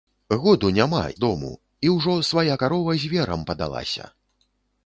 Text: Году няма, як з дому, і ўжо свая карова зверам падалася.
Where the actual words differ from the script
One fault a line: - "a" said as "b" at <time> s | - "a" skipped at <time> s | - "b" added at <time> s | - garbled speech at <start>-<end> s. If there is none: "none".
- "як" skipped at 1.0 s